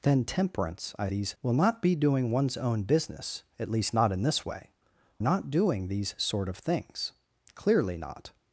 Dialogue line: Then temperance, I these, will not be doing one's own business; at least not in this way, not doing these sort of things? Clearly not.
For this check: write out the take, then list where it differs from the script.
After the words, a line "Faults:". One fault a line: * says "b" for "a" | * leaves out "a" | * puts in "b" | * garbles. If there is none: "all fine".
Then temperance, I these, will not be doing one's own business; at least not in this way, not doing these sort of things? Clearly not.
Faults:
all fine